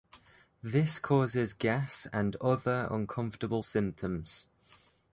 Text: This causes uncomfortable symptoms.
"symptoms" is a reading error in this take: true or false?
false